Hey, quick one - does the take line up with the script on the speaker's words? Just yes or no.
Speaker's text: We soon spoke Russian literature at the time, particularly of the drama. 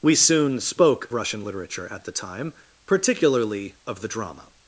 yes